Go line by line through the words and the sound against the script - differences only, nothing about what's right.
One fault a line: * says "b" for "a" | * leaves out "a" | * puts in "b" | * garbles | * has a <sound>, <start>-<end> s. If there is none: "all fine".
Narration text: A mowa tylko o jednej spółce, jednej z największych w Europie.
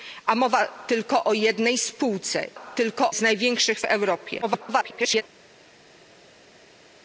* says "tylko" for "jednej"
* garbles